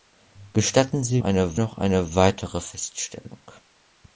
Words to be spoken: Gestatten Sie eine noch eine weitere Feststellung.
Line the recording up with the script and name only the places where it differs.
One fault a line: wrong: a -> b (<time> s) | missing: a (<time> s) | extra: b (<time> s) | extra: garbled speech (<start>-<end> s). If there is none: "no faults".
no faults